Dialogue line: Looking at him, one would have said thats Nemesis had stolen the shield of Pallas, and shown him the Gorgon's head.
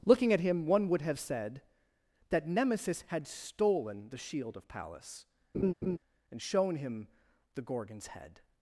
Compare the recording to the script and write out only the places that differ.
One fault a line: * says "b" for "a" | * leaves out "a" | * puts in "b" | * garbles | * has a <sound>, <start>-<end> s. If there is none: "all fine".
* says "that" for "thats"
* has a laugh, 5.5-6.0 s